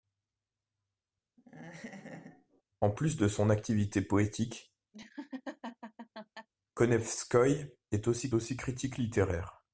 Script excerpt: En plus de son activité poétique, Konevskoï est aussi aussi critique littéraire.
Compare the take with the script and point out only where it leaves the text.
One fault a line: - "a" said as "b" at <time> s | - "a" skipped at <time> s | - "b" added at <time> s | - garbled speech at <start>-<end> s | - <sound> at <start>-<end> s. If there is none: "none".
- laugh at 1.4-2.6 s
- laugh at 4.9-6.5 s